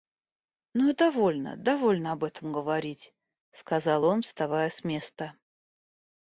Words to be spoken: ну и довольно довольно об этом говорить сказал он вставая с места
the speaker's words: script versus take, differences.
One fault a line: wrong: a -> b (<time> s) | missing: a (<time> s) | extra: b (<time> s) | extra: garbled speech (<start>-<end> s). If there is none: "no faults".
no faults